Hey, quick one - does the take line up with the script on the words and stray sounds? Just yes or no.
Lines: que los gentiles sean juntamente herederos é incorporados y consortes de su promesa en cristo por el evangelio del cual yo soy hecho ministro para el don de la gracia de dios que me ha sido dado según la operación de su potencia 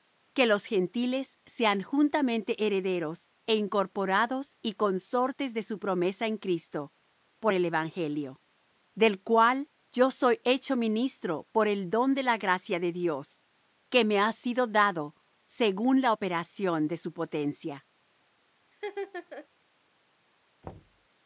no